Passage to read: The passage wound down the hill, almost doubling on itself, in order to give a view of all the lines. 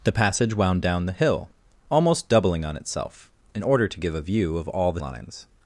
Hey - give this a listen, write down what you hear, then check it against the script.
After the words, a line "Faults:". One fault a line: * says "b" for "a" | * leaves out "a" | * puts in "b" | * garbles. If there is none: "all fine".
The passage wound down the hill, almost doubling on itself, in order to give a view of all the lines.
Faults:
all fine